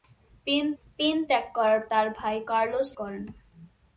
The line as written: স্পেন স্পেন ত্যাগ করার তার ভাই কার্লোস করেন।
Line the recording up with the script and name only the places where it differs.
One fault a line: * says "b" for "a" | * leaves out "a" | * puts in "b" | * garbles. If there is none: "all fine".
all fine